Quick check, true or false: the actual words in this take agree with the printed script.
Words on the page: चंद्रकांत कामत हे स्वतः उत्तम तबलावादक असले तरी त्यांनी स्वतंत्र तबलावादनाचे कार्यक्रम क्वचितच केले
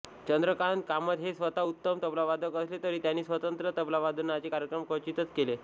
true